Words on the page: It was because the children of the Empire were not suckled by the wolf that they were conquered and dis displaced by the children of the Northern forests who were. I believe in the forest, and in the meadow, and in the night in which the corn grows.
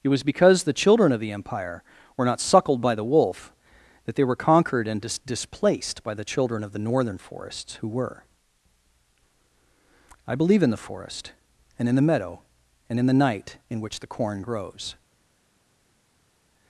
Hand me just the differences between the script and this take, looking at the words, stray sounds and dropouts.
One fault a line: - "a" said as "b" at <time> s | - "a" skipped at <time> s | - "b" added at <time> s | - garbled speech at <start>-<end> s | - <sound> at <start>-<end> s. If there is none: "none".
none